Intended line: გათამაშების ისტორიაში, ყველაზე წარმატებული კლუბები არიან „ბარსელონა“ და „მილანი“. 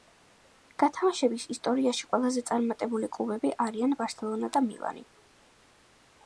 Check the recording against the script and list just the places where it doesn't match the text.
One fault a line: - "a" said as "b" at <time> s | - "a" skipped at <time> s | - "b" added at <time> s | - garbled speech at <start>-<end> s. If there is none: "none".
none